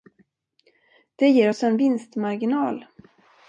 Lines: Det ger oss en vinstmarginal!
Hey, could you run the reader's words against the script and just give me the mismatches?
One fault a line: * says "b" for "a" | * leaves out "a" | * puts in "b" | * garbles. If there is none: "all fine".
all fine